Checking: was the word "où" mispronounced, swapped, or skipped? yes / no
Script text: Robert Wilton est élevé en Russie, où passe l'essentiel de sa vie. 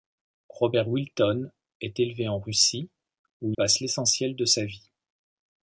no